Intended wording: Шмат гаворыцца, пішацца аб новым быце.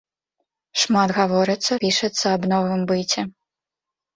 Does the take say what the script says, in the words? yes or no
yes